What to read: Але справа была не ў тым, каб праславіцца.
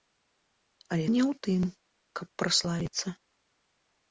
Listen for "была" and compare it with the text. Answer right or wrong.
wrong